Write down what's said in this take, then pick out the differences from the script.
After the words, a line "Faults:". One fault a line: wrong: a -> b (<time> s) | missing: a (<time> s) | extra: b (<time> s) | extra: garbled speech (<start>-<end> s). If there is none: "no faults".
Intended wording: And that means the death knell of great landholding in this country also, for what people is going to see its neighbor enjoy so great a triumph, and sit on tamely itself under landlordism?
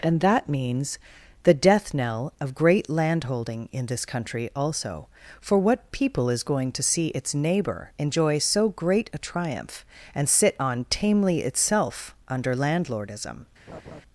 And that means the death knell of great landholding in this country also, for what people is going to see its neighbor enjoy so great a triumph, and sit on tamely itself under landlordism?
Faults:
no faults